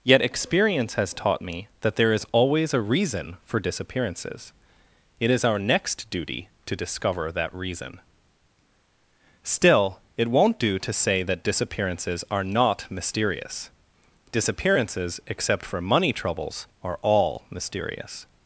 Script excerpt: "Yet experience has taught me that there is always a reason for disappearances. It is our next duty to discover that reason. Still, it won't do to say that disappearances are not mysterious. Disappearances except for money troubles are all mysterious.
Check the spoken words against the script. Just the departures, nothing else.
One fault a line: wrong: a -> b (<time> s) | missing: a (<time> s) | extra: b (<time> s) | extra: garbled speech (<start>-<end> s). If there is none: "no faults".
no faults